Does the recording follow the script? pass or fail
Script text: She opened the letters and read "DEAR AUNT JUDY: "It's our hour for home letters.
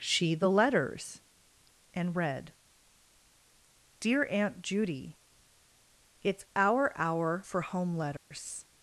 fail